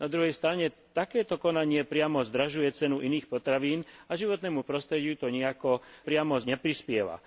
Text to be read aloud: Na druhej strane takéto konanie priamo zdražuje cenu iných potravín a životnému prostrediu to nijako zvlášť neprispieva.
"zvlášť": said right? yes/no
no